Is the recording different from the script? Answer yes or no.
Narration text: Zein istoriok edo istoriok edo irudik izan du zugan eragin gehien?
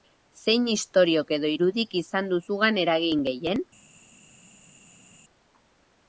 yes